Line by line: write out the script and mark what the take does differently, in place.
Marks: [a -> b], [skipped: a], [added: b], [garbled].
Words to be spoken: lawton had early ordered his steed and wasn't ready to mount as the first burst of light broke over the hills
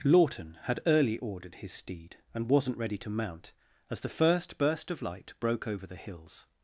lawton had early ordered his steed and wasn't ready to mount as the first burst of light broke over the hills